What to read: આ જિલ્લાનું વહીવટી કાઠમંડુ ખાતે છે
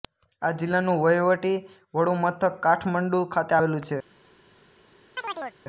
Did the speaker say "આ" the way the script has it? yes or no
yes